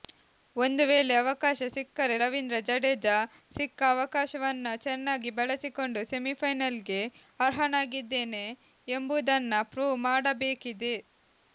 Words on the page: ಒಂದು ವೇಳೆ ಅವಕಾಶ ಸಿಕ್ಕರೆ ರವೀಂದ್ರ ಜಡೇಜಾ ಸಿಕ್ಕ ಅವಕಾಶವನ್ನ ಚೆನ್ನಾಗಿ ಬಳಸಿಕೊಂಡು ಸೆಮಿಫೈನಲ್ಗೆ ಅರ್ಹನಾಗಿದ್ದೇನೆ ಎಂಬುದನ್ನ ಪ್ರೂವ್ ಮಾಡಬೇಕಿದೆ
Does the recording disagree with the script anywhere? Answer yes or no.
no